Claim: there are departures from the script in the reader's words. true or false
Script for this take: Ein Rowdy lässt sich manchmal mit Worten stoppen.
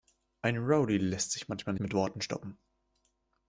false